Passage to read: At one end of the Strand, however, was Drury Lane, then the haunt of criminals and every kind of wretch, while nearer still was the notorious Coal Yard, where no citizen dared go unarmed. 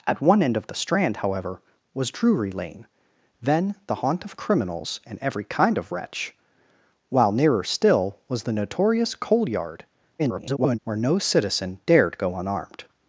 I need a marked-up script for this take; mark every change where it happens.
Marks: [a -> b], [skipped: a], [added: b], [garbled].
At one end of the Strand, however, was Drury Lane, then the haunt of criminals and every kind of wretch, while nearer still was the notorious Coal Yard, [garbled] where no citizen dared go unarmed.